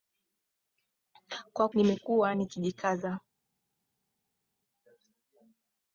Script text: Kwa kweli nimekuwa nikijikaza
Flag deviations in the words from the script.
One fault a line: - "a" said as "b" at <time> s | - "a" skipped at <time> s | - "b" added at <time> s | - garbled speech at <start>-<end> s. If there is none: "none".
- "kweli" skipped at 1.7 s